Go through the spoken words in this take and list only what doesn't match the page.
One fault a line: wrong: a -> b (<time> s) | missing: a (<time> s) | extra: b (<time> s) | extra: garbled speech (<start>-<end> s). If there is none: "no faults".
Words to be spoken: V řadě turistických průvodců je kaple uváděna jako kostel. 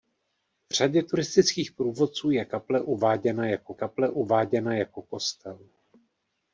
extra: kaple uváděna jako (3.7 s)